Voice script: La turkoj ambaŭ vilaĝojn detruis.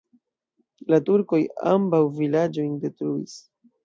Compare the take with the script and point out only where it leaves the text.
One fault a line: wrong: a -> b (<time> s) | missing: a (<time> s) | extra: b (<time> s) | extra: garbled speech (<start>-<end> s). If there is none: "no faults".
no faults